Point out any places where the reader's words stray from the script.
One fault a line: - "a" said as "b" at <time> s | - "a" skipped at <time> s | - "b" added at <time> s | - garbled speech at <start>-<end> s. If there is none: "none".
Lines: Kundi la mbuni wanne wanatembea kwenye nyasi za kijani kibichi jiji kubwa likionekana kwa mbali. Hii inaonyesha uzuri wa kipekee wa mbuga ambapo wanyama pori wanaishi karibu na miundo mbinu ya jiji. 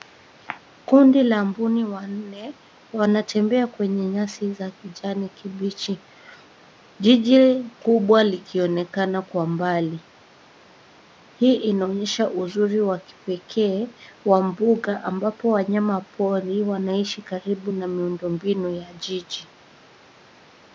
none